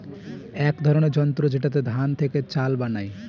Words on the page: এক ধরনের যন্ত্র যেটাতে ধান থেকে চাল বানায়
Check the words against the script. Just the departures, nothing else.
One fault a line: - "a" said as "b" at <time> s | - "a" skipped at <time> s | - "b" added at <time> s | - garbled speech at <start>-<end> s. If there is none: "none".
none